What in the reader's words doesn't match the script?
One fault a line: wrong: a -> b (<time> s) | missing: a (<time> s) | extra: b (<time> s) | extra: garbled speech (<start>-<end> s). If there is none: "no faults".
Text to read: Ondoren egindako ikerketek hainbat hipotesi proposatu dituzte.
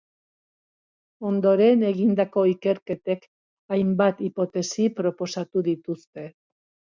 no faults